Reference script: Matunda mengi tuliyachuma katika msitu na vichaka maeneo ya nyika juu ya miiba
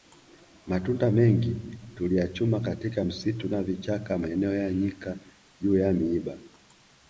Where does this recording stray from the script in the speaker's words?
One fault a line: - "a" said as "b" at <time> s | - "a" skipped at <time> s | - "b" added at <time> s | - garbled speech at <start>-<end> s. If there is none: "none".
none